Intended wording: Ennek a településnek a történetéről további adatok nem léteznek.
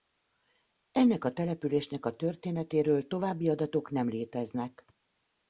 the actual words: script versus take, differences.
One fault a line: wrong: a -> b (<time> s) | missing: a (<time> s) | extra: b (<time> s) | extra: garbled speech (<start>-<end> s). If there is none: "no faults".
no faults